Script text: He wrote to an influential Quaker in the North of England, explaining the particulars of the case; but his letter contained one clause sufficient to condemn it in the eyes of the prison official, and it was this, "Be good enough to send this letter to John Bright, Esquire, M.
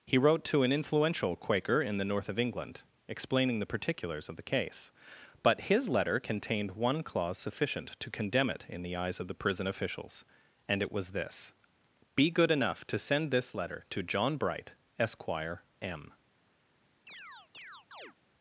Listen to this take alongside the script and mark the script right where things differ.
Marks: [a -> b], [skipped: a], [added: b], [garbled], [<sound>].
He wrote to an influential Quaker in the North of England, explaining the particulars of the case; but his letter contained one clause sufficient to condemn it in the eyes of the prison [official, -> officials] and it was this, "Be good enough to send this letter to John Bright, Esquire, M. [chirp]